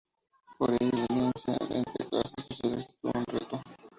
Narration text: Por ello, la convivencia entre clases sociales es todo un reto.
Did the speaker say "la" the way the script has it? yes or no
no